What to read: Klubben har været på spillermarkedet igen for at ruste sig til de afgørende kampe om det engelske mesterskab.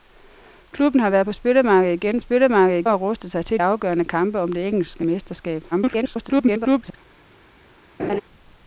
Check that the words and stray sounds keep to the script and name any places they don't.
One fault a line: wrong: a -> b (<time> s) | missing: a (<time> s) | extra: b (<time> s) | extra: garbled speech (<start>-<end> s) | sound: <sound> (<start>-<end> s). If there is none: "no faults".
wrong: for -> spillermarkedet (2.2 s)
missing: de (3.6 s)
extra: garbled speech (5.7-7.0 s)
sound: laugh (8.0-8.2 s)